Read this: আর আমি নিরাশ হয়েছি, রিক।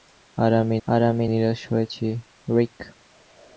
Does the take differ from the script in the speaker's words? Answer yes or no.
yes